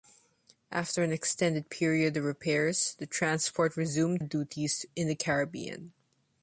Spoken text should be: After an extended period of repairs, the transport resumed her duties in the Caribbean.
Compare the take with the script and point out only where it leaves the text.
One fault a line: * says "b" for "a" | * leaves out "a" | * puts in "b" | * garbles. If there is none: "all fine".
* leaves out "her"